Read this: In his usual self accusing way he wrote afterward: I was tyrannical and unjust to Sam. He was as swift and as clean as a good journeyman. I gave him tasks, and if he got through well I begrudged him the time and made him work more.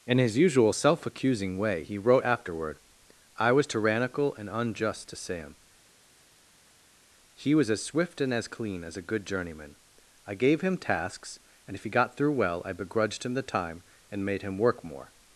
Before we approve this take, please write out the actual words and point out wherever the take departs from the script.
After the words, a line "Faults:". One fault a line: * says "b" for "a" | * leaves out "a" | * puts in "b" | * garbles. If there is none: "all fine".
In his usual self accusing way he wrote afterward: I was tyrannical and unjust to Sam. He was as swift and as clean as a good journeyman. I gave him tasks, and if he got through well I begrudged him the time and made him work more.
Faults:
all fine